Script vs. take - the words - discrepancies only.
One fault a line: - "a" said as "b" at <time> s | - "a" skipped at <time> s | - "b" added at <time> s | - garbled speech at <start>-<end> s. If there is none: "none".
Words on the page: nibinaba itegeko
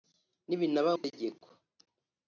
none